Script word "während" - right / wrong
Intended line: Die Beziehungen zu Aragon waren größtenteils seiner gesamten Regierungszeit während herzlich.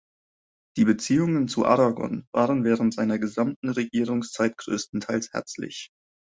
wrong